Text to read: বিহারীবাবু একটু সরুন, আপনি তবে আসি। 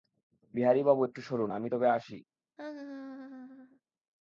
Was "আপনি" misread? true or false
true